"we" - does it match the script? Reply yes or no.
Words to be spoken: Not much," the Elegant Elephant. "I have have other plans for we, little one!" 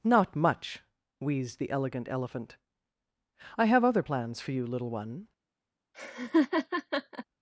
no